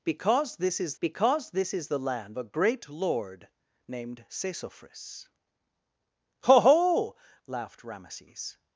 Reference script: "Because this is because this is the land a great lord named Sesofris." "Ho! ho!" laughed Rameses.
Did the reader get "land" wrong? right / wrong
right